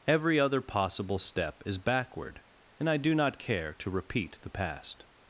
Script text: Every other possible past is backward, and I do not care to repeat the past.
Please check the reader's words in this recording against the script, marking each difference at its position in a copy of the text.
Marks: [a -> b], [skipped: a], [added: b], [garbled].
Every other possible [past -> step] is backward, and I do not care to repeat the past.